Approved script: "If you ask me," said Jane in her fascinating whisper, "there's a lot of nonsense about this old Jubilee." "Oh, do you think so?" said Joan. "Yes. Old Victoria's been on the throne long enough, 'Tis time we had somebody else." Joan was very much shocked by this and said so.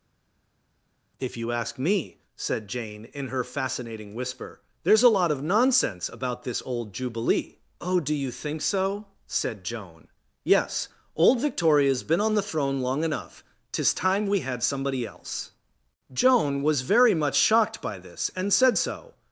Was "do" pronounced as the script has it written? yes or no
yes